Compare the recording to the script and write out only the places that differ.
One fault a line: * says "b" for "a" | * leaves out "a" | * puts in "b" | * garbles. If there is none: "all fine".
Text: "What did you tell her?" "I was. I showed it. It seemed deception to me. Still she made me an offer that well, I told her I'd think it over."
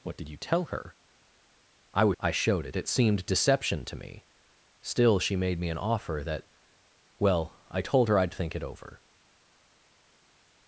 all fine